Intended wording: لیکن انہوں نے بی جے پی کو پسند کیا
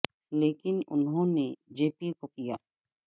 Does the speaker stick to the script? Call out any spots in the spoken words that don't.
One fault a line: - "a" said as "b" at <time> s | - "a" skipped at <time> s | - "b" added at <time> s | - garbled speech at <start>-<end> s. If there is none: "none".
- "بی" skipped at 1.5 s
- "پسند" skipped at 2.3 s